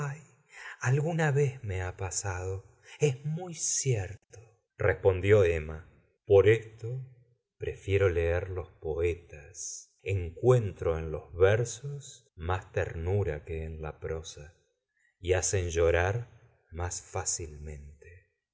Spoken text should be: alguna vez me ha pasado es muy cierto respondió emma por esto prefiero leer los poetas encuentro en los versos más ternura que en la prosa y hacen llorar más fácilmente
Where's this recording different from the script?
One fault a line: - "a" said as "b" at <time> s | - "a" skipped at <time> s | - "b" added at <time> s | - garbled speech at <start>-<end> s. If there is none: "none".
none